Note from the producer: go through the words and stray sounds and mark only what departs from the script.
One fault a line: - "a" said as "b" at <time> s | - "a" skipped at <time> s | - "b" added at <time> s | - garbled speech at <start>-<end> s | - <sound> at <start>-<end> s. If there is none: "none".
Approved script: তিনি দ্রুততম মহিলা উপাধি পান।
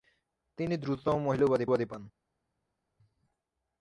- "উপাধি" added at 1.7 s